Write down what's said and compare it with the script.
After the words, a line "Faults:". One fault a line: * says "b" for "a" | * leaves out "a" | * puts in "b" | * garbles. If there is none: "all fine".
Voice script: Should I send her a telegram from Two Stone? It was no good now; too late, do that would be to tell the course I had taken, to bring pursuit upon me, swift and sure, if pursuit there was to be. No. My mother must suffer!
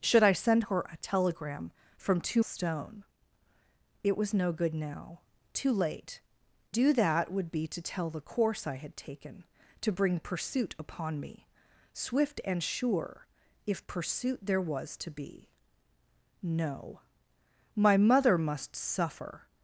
Should I send her a telegram from Two Stone? It was no good now; too late, do that would be to tell the course I had taken, to bring pursuit upon me, swift and sure, if pursuit there was to be. No. My mother must suffer!
Faults:
all fine